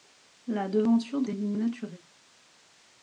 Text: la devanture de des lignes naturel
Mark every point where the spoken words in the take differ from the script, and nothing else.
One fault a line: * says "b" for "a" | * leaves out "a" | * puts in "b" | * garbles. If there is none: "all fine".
all fine